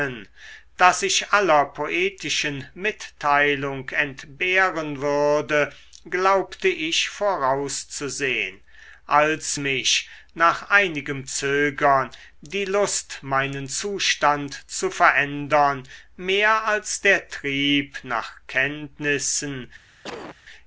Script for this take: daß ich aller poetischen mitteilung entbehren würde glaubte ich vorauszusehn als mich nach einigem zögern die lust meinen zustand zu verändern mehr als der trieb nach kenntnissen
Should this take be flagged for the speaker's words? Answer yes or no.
no